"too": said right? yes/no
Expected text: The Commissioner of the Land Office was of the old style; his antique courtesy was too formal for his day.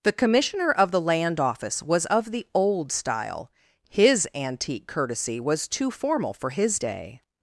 yes